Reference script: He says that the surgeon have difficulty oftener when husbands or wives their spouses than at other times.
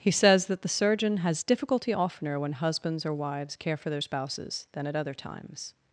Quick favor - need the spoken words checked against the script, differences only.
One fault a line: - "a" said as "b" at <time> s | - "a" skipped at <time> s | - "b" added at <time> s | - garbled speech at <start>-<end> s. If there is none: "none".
- "have" said as "has" at 1.2 s
- "care for" added at 3.5 s